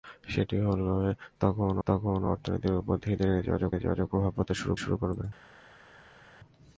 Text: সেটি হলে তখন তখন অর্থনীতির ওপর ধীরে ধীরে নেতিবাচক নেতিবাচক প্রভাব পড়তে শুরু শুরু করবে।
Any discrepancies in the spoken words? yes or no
no